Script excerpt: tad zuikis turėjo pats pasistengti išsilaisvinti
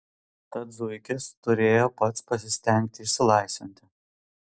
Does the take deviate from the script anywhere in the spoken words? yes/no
no